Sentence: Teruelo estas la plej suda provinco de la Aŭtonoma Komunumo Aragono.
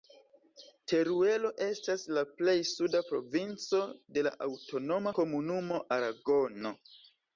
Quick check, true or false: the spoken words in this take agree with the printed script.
true